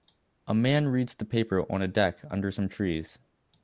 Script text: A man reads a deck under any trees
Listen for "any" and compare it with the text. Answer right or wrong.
wrong